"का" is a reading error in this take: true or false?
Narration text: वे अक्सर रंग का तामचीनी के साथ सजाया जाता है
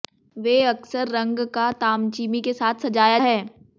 false